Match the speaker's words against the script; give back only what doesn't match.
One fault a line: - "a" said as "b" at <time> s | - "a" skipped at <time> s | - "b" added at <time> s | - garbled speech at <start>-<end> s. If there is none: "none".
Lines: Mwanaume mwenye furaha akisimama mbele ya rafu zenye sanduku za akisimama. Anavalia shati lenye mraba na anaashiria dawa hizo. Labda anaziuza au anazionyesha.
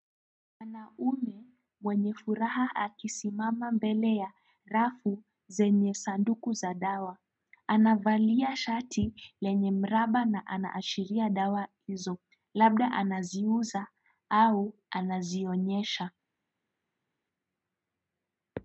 - "akisimama" said as "dawa" at 6.7 s